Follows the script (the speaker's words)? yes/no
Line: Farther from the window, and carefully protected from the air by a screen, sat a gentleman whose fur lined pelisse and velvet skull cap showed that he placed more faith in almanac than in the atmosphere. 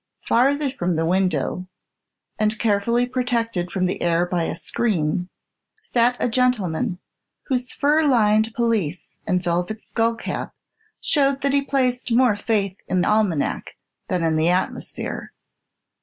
yes